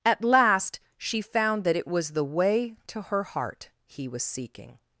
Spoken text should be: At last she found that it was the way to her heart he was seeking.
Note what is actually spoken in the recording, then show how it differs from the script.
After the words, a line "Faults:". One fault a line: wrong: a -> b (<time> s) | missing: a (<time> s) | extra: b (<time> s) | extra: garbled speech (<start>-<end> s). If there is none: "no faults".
At last she found that it was the way to her heart he was seeking.
Faults:
no faults